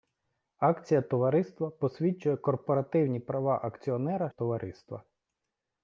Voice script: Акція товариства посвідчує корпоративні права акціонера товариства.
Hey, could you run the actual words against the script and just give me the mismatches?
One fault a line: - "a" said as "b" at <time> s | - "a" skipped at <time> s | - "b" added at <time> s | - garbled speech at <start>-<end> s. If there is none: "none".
none